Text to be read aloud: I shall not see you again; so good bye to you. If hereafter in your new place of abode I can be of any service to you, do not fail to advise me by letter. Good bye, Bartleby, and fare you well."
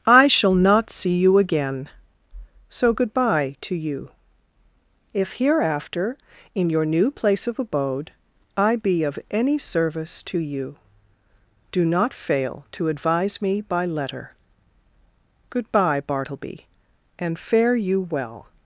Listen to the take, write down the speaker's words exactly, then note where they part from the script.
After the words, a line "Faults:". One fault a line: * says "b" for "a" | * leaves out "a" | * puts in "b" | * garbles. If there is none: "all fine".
I shall not see you again; so good bye to you. If hereafter in your new place of abode I be of any service to you, do not fail to advise me by letter. Good bye, Bartleby, and fare you well."
Faults:
* leaves out "can"